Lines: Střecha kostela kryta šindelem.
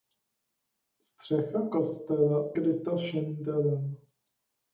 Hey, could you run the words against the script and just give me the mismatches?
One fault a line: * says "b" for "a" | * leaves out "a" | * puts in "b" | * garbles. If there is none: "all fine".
all fine